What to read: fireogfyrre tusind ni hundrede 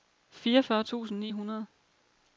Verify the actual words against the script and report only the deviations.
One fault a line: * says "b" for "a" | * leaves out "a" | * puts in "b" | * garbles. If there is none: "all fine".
all fine